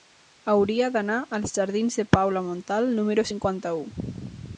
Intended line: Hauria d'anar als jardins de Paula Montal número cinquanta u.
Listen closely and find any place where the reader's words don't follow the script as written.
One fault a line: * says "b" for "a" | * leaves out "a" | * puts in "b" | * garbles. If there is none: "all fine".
all fine